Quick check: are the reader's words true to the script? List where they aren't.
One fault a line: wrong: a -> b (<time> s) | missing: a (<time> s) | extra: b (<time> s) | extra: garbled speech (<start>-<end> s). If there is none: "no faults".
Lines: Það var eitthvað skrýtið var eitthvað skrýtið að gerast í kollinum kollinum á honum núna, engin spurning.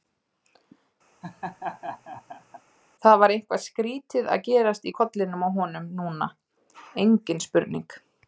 missing: var eitthvað skrýtið (4.3 s)
missing: kollinum (5.5 s)